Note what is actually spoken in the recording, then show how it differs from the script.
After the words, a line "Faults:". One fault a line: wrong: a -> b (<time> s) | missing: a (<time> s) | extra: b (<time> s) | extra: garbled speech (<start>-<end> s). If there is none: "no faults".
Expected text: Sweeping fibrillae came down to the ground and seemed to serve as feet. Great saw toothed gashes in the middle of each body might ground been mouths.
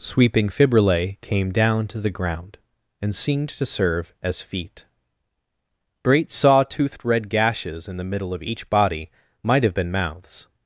Sweeping fibrillae came down to the ground and seemed to serve as feet. Great saw toothed red gashes in the middle of each body might have been mouths.
Faults:
extra: red (7.0 s)
wrong: ground -> have (9.6 s)